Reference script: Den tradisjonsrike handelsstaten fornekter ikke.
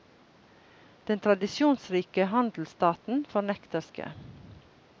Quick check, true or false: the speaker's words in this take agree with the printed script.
true